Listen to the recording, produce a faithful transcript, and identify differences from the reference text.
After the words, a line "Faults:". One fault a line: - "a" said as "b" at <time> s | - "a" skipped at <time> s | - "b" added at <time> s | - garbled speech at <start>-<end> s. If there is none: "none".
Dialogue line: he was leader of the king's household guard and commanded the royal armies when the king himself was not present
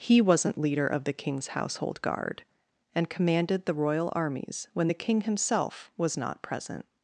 he wasn't leader of the king's household guard and commanded the royal armies when the king himself was not present
Faults:
- "was" said as "wasn't" at 0.2 s